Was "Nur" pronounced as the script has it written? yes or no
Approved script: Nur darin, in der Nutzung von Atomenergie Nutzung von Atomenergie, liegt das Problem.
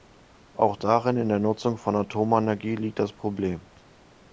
no